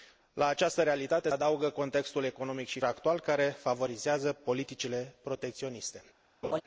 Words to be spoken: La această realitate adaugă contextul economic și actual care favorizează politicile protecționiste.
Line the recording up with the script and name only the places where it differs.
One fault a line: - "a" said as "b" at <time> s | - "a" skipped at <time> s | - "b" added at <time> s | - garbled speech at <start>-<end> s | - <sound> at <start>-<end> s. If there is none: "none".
- laugh at 6.4-6.6 s